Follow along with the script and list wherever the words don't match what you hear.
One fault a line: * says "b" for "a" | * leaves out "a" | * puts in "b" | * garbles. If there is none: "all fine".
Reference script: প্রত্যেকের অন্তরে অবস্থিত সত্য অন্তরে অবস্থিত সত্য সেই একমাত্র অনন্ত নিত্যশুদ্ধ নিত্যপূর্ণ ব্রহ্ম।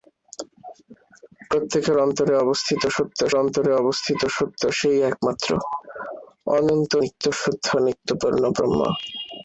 all fine